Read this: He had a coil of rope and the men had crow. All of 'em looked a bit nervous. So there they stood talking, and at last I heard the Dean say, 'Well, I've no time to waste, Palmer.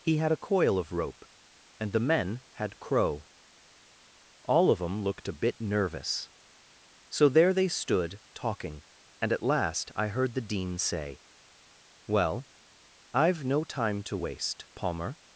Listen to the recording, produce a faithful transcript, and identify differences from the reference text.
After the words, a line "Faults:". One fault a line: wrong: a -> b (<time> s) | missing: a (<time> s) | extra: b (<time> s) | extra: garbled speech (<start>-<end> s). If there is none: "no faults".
He had a coil of rope and the men had crow. All of 'em looked a bit nervous. So there they stood talking, and at last I heard the Dean say, 'Well, I've no time to waste, Palmer.
Faults:
no faults